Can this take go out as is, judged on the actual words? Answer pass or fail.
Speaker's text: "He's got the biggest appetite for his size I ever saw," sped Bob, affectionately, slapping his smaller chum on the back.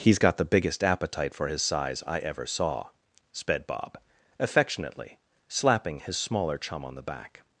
pass